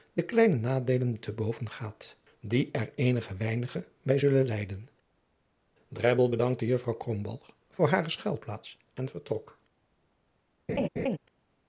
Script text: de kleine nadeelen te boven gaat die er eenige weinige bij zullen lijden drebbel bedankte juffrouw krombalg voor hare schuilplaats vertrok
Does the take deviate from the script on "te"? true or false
false